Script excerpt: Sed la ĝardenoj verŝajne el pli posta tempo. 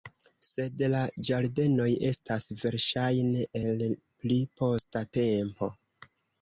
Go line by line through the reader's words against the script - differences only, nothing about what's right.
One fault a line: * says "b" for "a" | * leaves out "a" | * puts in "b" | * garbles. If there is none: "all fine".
* puts in "estas"